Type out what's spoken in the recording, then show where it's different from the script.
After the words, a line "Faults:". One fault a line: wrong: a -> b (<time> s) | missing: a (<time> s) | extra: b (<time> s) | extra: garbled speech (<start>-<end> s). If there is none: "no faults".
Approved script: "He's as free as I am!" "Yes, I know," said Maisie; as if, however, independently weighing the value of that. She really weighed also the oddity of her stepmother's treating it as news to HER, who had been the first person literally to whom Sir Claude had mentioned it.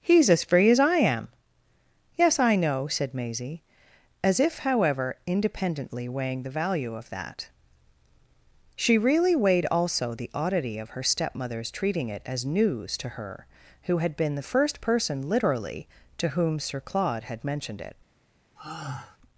"He's as free as I am!" "Yes, I know," said Maisie; as if, however, independently weighing the value of that. She really weighed also the oddity of her stepmother's treating it as news to HER, who had been the first person literally to whom Sir Claude had mentioned it.
Faults:
no faults